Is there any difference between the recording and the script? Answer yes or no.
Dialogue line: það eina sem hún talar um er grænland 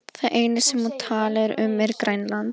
no